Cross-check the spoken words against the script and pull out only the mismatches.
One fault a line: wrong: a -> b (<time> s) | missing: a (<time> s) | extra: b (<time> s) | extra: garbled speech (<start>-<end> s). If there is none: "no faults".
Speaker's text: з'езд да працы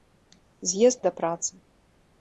no faults